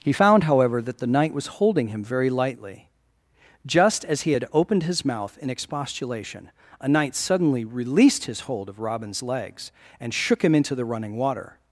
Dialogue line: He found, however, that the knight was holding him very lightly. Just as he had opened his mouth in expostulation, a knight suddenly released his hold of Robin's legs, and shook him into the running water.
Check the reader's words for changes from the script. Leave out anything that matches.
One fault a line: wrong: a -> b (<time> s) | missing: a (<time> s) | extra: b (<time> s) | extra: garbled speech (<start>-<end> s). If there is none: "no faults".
no faults